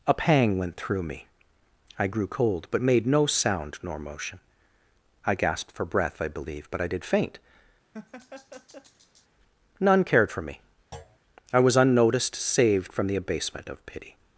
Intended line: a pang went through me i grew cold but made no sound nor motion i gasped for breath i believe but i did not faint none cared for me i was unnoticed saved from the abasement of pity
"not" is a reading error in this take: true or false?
true